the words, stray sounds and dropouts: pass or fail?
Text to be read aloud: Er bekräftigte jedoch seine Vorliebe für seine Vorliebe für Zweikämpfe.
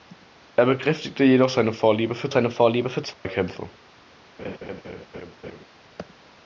fail